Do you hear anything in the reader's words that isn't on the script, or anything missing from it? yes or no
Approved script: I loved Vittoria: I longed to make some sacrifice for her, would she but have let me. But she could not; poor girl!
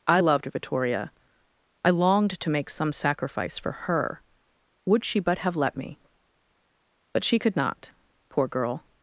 no